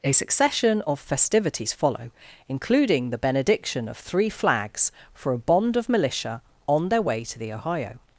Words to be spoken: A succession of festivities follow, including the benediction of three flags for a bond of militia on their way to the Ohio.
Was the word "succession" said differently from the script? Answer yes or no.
no